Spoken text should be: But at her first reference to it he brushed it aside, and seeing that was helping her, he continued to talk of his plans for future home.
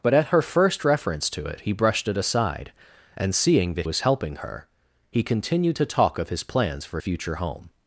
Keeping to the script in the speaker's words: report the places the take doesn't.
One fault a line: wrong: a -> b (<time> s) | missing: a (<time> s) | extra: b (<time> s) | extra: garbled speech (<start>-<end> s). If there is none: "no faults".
no faults